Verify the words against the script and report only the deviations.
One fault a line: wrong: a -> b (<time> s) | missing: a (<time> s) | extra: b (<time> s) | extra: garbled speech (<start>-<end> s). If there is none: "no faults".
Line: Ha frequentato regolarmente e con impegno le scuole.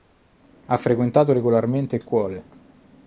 missing: con impegno le (2.0 s)